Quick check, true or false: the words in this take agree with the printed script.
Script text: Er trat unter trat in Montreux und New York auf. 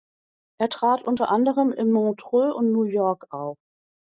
false